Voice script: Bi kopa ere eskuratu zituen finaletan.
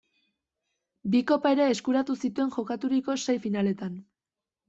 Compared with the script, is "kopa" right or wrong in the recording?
right